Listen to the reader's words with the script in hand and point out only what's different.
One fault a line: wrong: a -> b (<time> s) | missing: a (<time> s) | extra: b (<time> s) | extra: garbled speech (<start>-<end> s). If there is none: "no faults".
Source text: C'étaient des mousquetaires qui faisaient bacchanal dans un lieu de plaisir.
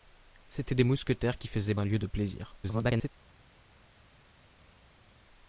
missing: bacchanal dans (1.8 s)
extra: garbled speech (2.6-3.1 s)